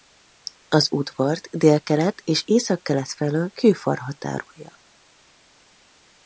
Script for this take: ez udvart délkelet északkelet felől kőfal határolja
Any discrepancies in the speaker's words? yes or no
yes